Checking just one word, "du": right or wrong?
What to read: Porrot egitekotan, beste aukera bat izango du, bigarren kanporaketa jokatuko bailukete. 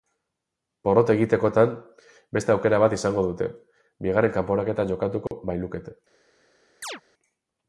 wrong